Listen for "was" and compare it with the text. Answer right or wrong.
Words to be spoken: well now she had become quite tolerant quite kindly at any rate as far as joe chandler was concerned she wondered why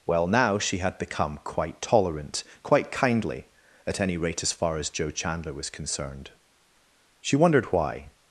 right